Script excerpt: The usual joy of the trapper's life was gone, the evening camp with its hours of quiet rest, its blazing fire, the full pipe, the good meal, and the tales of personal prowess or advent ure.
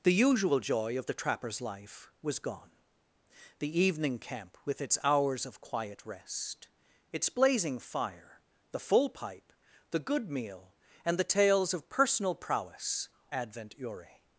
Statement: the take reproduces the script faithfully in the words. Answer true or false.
false